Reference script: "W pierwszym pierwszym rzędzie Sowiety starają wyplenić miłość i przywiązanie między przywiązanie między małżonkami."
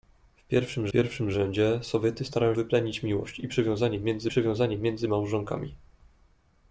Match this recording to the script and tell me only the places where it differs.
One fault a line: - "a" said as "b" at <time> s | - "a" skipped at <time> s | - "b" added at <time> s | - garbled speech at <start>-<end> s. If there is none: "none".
none